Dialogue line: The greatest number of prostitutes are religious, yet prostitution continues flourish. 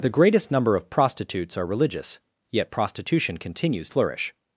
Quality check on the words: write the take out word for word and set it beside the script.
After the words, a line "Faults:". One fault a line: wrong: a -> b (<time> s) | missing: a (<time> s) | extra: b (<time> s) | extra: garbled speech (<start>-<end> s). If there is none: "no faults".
The greatest number of prostitutes are religious, yet prostitution continues flourish.
Faults:
no faults